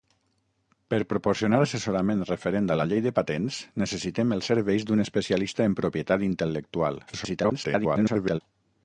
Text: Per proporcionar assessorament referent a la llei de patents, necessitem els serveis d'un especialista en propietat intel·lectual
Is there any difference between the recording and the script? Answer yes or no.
yes